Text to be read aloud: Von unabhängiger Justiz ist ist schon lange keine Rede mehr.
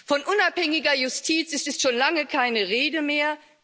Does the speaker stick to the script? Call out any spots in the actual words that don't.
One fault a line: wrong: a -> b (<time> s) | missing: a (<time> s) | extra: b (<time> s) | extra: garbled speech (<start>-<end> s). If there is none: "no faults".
no faults